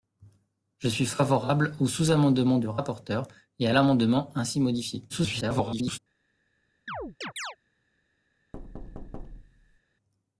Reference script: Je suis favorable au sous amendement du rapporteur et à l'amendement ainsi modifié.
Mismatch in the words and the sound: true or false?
true